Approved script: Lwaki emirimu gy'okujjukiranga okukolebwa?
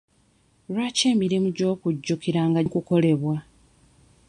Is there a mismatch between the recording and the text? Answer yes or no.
no